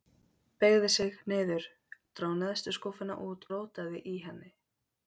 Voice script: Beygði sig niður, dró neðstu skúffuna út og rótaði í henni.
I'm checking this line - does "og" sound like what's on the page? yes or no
no